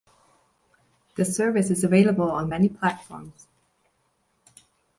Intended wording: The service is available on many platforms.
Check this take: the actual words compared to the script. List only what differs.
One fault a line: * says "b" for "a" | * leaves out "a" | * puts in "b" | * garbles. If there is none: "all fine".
all fine